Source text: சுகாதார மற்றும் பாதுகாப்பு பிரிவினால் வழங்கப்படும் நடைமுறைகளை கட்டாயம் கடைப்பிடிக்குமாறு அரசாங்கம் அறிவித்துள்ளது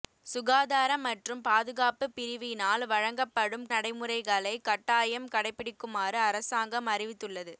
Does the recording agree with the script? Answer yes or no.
yes